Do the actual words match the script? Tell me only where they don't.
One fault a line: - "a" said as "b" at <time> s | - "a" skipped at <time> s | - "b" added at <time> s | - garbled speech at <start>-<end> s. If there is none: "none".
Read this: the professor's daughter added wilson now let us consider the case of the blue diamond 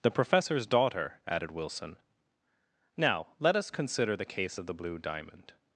none